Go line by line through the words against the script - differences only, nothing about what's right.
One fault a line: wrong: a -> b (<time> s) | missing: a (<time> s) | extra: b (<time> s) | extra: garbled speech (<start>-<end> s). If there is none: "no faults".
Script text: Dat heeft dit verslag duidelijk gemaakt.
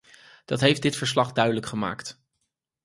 no faults